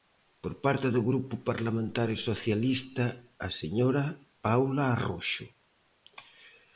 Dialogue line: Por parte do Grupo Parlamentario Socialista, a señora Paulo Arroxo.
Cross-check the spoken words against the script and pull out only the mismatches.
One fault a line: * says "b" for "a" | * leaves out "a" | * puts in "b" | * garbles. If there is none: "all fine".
all fine